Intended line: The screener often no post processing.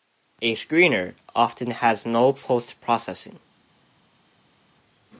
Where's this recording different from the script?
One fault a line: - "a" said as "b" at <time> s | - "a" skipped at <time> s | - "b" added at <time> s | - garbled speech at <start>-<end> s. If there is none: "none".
- "The" said as "A" at 0.4 s
- "has" added at 1.7 s